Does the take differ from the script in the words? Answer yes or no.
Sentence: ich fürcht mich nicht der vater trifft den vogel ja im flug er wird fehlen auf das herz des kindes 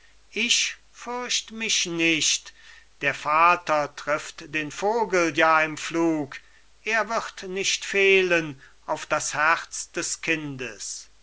yes